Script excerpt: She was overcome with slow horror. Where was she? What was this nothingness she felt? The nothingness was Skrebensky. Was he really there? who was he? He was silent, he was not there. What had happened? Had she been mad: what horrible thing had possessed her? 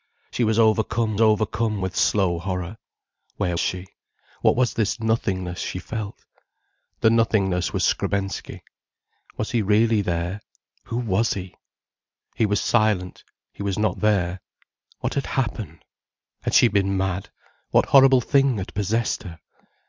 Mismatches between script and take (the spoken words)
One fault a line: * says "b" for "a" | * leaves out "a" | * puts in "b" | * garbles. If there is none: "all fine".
* puts in "overcome"
* leaves out "was"